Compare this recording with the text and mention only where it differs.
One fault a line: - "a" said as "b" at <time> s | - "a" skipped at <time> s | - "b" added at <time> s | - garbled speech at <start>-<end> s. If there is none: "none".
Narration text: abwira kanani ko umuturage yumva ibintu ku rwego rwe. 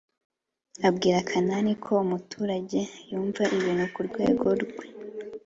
none